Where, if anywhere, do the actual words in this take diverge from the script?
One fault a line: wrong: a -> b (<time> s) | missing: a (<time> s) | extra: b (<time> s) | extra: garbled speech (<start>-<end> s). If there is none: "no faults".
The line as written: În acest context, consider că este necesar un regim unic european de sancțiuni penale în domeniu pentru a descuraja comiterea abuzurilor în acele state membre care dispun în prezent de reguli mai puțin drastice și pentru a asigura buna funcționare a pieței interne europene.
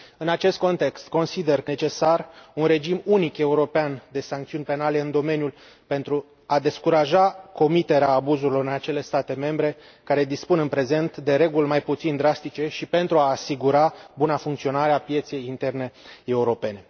missing: este (1.7 s)